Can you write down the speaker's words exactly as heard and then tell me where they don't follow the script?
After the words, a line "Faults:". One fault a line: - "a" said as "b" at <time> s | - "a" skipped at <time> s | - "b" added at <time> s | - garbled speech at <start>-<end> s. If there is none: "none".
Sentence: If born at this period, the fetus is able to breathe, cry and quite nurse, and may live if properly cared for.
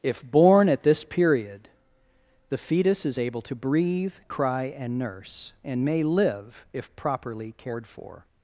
If born at this period, the fetus is able to breathe, cry and nurse, and may live if properly cared for.
Faults:
- "quite" skipped at 5.0 s